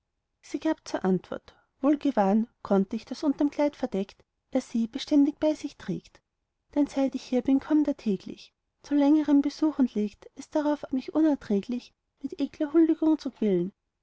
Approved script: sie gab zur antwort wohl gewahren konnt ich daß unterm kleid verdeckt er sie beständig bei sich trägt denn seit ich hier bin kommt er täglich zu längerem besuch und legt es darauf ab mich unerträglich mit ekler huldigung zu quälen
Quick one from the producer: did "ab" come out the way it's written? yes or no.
no